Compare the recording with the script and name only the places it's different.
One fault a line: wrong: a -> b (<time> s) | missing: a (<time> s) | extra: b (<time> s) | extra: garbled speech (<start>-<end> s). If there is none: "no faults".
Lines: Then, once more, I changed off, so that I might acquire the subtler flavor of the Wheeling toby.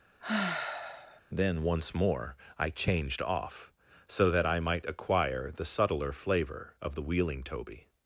no faults